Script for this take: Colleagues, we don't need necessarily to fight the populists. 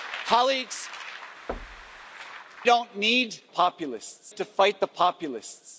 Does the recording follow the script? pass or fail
fail